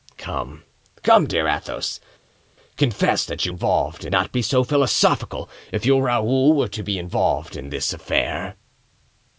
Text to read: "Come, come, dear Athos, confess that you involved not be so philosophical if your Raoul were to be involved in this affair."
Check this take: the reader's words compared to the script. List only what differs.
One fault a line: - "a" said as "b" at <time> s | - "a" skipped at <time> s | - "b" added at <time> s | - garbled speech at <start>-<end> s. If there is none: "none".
none